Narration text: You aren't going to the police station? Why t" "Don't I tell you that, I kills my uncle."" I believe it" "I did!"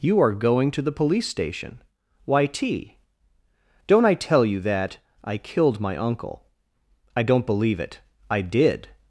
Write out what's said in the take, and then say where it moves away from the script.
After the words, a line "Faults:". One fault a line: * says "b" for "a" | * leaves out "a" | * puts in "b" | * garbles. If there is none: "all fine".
You are going to the police station? Why t" "Don't I tell you that, I killed my uncle."" I don't believe it" "I did!"
Faults:
* says "are" for "aren't"
* says "killed" for "kills"
* puts in "don't"